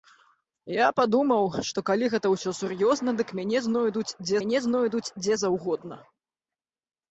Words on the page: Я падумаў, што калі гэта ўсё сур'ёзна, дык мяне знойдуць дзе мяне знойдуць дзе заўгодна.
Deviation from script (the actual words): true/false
false